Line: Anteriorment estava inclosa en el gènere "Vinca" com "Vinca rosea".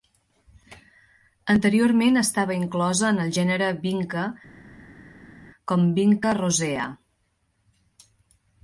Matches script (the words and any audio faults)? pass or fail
pass